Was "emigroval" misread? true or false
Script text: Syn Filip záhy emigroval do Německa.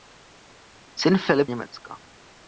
true